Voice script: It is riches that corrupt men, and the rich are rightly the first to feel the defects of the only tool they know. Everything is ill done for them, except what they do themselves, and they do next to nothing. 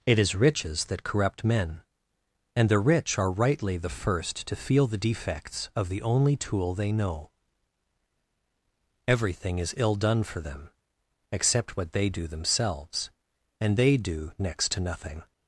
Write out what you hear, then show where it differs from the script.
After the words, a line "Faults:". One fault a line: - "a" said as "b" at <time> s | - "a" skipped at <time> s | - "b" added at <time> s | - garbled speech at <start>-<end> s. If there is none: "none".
It is riches that corrupt men, and the rich are rightly the first to feel the defects of the only tool they know. Everything is ill done for them, except what they do themselves, and they do next to nothing.
Faults:
none